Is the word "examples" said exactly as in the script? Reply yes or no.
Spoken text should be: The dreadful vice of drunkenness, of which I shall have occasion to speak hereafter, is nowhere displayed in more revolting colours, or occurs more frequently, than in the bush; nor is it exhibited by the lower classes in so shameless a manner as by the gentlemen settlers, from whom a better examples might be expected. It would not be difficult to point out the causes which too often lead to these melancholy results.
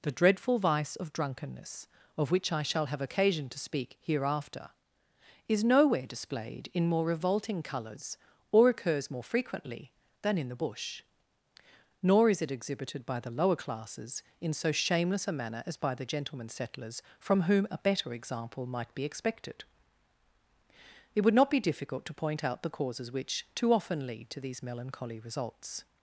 no